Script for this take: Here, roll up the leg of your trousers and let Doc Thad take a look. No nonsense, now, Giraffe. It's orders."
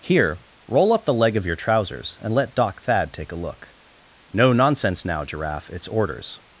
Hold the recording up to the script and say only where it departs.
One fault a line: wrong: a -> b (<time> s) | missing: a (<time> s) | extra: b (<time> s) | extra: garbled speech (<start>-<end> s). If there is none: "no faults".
no faults